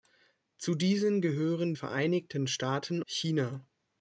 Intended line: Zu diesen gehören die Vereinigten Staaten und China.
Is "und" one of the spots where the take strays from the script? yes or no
yes